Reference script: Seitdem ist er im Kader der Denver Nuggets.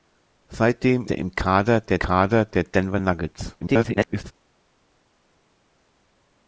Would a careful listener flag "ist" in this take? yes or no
yes